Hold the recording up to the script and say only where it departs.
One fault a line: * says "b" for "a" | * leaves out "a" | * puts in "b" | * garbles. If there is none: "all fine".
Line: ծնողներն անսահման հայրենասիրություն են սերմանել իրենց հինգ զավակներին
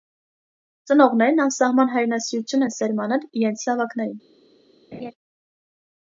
* leaves out "հինգ"